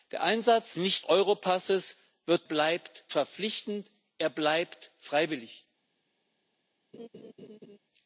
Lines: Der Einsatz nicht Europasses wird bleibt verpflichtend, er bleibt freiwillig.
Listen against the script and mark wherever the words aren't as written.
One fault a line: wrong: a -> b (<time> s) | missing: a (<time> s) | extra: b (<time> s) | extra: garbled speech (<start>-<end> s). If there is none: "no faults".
no faults